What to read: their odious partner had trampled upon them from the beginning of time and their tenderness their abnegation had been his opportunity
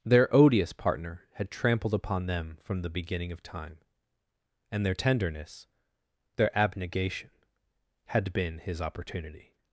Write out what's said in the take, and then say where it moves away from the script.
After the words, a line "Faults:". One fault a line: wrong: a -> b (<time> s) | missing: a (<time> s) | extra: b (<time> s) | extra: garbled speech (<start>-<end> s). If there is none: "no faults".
their odious partner had trampled upon them from the beginning of time and their tenderness their abnegation had been his opportunity
Faults:
no faults